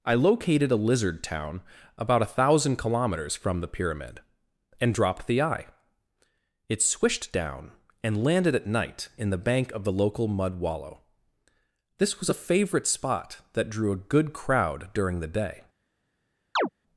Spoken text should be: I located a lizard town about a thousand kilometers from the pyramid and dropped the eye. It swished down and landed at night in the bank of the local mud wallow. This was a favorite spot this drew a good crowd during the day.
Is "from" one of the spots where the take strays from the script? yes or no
no